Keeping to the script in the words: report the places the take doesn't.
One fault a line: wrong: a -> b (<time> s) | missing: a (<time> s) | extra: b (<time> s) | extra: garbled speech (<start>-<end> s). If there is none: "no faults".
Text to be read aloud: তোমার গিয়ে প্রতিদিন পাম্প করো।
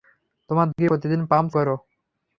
no faults